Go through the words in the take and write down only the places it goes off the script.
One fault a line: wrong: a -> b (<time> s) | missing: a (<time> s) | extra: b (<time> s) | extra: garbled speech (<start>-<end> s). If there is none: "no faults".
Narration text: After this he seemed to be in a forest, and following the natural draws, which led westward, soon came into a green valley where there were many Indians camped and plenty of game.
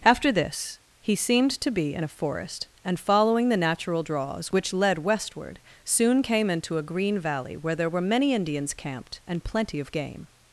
no faults